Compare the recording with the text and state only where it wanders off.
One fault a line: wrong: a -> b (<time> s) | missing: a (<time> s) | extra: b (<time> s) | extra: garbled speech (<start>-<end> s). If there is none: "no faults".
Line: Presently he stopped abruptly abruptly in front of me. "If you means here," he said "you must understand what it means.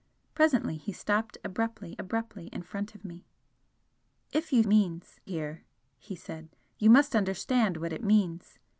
no faults